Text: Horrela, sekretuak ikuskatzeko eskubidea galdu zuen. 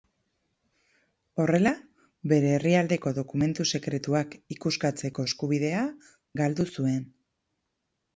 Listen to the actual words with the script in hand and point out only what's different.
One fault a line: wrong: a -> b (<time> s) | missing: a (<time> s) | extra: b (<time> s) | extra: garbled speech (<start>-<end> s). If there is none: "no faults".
extra: bere herrialdeko dokumentu (2.3 s)